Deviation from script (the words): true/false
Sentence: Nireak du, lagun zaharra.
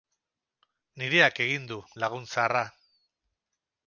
true